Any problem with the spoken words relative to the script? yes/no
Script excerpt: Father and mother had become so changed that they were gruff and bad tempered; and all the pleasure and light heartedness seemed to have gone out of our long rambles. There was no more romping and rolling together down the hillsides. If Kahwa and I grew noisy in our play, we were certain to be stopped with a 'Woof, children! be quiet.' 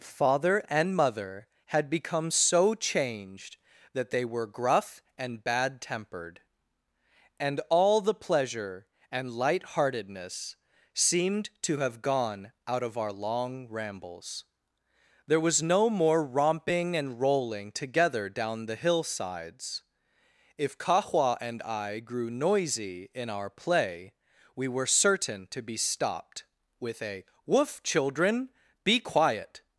no